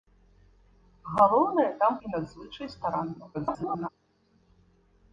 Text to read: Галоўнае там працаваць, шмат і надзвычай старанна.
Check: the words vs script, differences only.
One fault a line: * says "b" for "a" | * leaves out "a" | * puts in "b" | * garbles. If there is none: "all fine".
* leaves out "працаваць шмат"
* garbles